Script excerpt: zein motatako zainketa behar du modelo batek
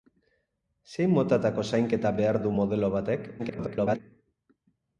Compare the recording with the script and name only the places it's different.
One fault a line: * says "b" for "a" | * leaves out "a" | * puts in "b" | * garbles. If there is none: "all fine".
* garbles